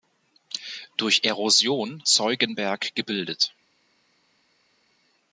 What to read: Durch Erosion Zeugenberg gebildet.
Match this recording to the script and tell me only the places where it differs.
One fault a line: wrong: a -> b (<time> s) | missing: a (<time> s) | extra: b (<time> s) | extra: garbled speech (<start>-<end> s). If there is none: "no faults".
no faults